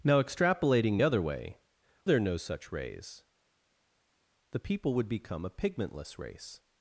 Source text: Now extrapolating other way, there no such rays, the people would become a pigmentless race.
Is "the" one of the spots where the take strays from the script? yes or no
no